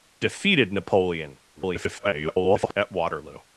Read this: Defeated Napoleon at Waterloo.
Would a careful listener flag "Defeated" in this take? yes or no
no